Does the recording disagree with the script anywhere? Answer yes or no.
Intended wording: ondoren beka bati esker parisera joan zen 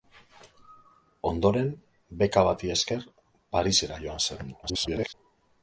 yes